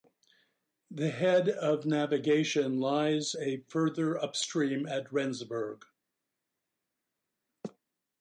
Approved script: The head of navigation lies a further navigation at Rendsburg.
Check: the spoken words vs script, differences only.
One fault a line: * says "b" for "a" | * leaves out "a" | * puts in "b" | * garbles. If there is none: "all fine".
* says "upstream" for "navigation"